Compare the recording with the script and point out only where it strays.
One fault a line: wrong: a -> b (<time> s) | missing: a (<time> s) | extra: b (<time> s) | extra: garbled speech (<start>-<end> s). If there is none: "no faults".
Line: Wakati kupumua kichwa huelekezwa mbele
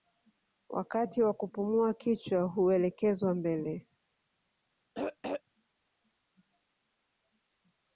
extra: wa (1.2 s)